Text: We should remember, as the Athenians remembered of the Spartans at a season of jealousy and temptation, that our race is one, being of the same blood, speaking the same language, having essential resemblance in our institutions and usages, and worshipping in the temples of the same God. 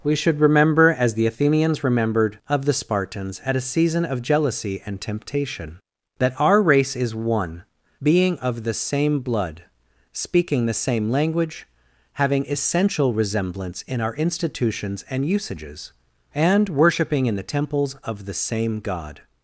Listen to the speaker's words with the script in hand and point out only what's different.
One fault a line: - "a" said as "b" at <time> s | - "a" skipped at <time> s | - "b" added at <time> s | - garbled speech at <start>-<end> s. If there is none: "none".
none